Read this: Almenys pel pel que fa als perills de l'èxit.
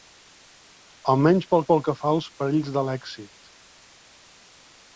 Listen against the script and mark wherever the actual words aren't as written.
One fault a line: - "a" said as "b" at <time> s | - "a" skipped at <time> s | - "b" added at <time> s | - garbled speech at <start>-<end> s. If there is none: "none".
none